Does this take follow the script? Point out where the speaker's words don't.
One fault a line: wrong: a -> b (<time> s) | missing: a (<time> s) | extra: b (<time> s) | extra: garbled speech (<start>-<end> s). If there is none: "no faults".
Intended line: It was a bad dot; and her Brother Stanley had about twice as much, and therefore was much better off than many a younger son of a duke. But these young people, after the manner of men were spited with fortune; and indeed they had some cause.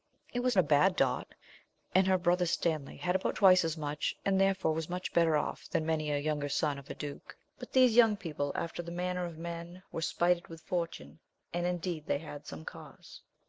no faults